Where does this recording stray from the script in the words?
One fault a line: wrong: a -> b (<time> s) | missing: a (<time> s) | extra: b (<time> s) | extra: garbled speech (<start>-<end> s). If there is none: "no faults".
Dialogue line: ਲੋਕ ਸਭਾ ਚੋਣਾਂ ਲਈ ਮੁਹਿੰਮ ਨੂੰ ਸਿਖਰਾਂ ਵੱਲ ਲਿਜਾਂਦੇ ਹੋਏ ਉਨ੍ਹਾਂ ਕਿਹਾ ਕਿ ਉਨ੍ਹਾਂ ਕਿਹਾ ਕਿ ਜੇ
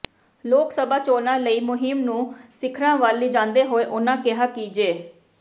missing: ਉਨ੍ਹਾਂ ਕਿਹਾ ਕਿ (4.7 s)